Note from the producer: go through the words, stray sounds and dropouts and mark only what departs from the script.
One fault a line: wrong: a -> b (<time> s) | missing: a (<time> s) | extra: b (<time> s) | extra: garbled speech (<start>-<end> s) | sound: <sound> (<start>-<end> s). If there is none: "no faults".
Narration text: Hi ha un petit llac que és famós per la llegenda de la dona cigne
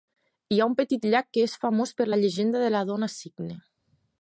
no faults